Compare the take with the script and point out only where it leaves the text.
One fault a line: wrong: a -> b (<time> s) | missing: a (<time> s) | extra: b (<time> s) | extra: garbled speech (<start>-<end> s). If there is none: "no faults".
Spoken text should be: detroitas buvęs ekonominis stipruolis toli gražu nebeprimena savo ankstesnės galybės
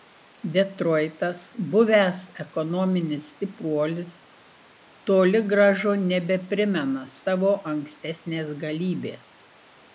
no faults